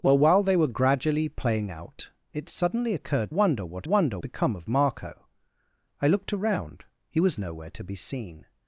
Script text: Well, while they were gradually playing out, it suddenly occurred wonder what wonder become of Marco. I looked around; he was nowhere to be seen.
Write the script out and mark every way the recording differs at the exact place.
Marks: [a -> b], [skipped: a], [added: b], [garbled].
Well, while they were gradually playing out, it suddenly occurred wonder what wonder become of Marco. I looked around; he was nowhere to be seen.